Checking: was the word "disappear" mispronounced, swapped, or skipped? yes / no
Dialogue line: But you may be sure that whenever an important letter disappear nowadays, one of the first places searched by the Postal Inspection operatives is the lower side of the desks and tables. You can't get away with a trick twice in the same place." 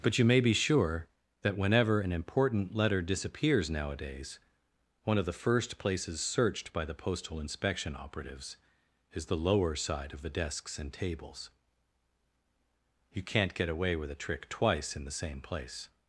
yes